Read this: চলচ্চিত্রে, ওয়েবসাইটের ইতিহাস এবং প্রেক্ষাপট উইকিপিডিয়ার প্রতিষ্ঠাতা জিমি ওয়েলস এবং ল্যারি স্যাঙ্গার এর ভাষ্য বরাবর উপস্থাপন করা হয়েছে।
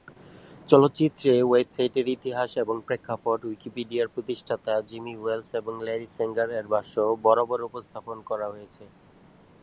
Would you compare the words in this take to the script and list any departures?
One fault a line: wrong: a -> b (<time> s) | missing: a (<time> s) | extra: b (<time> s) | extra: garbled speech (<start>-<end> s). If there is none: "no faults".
no faults